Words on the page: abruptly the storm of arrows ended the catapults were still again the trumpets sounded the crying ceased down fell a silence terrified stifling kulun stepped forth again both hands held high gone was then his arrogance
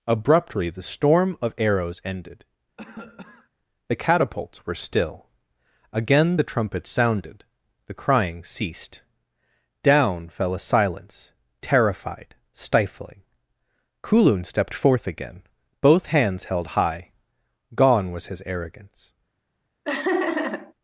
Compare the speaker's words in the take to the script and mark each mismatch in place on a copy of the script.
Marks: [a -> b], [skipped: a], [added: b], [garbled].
abruptly the storm of arrows ended the catapults were still again the trumpets sounded the crying ceased down fell a silence terrified stifling kulun stepped forth again both hands held high gone was [skipped: then] his arrogance